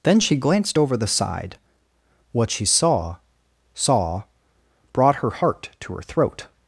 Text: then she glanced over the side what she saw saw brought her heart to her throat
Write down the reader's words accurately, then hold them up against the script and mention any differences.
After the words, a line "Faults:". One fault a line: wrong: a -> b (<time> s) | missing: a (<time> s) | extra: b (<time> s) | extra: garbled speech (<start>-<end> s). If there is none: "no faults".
then she glanced over the side what she saw saw brought her heart to her throat
Faults:
no faults